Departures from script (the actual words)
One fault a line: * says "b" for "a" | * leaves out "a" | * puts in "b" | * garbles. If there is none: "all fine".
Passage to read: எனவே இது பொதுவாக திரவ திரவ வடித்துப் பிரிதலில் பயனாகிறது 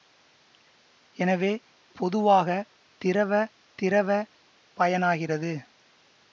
* leaves out "இது"
* leaves out "வடித்துப் பிரிதலில்"